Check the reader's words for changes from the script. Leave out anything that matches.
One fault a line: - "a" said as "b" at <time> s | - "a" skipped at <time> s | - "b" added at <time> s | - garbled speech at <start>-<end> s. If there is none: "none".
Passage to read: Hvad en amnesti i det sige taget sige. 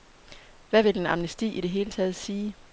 - "vil" added at 0.8 s
- "sige" said as "hele" at 1.7 s